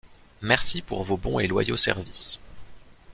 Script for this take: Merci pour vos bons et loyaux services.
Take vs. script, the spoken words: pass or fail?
pass